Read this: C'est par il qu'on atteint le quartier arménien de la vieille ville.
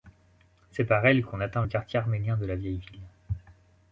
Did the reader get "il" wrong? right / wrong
wrong